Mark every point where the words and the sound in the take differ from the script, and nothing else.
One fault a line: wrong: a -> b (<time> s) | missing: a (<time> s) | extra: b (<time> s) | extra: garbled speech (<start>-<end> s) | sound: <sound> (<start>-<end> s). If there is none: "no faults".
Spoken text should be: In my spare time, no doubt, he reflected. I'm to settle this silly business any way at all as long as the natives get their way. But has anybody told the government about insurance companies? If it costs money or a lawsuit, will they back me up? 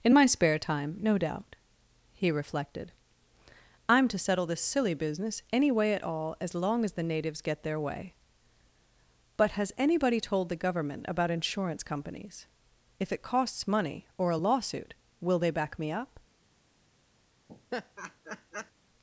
sound: laugh (17.5-18.7 s)